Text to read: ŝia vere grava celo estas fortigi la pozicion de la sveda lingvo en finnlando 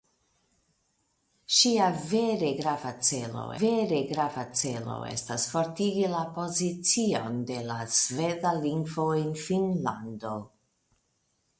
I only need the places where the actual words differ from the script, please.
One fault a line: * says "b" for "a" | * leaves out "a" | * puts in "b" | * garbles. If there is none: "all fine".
* puts in "vere grava celo"